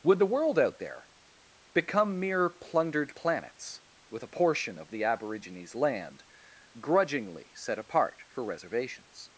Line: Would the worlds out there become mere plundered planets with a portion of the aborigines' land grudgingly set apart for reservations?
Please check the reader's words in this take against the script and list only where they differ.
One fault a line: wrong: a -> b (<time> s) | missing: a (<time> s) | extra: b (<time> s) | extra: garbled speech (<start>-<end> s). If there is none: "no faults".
wrong: worlds -> world (0.2 s)